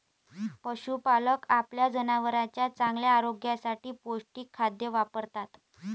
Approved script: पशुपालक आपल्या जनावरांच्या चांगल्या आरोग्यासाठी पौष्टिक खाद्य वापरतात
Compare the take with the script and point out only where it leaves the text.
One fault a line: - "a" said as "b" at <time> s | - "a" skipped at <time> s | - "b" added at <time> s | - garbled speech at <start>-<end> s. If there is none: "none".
none